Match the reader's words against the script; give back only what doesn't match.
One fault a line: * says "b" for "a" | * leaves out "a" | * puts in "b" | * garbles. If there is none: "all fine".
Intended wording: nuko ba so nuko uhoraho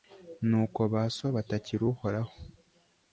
* says "batakira" for "nuko"